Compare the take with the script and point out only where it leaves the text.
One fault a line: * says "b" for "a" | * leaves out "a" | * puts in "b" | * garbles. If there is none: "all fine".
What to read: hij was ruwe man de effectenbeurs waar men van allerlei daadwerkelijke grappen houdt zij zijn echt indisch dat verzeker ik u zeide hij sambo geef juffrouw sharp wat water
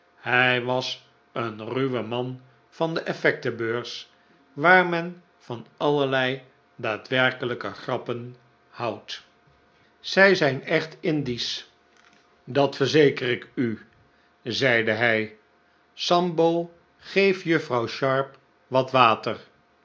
* puts in "een"
* puts in "van"